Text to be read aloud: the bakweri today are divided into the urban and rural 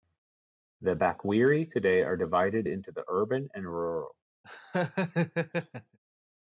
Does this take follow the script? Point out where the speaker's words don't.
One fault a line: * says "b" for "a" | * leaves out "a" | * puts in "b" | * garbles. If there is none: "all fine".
all fine